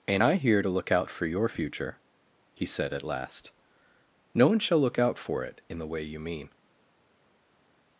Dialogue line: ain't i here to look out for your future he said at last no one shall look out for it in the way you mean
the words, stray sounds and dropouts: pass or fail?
pass